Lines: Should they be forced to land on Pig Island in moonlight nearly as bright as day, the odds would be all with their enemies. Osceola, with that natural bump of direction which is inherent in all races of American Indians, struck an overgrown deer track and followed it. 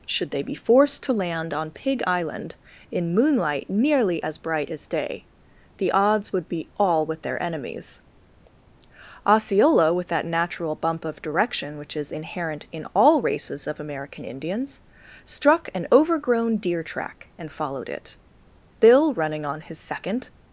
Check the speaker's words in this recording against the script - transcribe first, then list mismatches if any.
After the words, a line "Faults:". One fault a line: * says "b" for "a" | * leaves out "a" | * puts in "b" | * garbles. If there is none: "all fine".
Should they be forced to land on Pig Island in moonlight nearly as bright as day, the odds would be all with their enemies. Osceola, with that natural bump of direction which is inherent in all races of American Indians, struck an overgrown deer track and followed it. Bill, running on his second
Faults:
* puts in "Bill running on his second"